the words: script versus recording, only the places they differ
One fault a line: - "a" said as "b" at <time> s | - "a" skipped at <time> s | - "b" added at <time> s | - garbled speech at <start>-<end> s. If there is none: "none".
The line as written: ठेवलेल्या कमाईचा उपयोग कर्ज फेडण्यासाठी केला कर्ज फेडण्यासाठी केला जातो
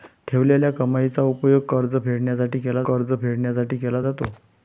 none